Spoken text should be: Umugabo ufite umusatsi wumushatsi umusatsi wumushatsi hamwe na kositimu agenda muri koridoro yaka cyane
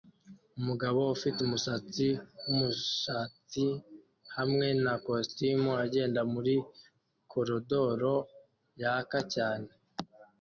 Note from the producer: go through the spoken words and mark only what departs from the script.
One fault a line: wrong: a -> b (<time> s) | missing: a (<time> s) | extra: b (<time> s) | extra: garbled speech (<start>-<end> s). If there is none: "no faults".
missing: umusatsi wumushatsi (3.6 s)